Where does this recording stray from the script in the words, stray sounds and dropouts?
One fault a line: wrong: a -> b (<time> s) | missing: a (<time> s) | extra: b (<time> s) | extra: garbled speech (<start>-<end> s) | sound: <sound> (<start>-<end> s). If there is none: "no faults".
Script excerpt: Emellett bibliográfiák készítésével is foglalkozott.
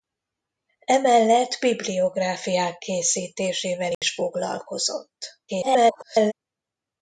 sound: dropout (3.9-4.0 s)
extra: garbled speech (5.5-6.3 s)